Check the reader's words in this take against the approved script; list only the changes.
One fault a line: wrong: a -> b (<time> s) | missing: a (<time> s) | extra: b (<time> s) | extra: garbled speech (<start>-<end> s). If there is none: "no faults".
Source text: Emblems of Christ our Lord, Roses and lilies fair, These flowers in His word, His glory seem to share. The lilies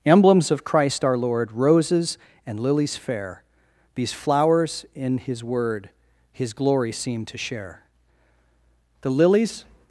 no faults